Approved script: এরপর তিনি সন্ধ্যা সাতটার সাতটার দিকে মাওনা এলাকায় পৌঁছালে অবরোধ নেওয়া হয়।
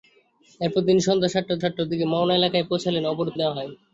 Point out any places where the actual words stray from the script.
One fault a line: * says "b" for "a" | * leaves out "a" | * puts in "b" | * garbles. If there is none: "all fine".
all fine